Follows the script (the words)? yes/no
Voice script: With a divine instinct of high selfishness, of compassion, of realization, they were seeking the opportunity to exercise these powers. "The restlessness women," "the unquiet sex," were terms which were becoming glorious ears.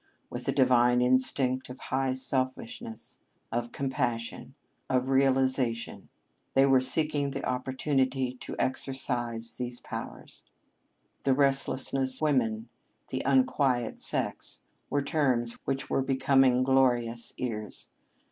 yes